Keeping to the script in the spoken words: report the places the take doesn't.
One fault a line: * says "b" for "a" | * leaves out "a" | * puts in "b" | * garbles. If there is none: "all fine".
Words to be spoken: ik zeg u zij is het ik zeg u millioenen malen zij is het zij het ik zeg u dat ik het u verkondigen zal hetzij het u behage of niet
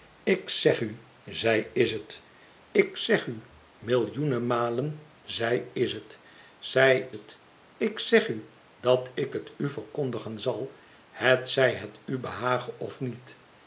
all fine